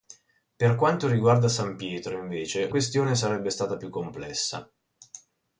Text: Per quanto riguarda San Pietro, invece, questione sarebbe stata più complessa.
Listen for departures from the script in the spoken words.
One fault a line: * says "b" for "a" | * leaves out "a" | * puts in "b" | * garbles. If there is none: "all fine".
all fine